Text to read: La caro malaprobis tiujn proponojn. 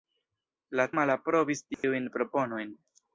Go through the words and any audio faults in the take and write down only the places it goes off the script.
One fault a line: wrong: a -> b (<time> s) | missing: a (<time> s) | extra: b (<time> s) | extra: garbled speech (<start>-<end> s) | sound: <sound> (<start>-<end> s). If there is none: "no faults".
missing: caro (0.8 s)
sound: dropout (1.7-1.8 s)